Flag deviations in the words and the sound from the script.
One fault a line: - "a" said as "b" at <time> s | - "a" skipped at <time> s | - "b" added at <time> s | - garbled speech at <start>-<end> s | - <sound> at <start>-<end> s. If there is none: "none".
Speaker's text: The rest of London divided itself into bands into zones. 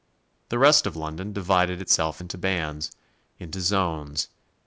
none